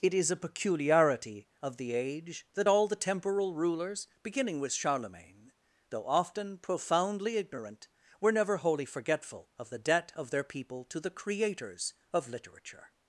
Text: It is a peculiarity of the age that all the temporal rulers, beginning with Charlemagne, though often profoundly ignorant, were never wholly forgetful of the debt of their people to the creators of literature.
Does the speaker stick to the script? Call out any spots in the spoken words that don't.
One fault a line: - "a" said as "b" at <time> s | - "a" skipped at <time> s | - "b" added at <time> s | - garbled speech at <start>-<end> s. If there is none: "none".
none